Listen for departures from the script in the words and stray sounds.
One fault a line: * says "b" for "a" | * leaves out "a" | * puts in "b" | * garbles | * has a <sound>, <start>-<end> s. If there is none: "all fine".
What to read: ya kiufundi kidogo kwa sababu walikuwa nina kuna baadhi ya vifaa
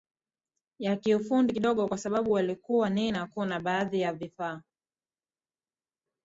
all fine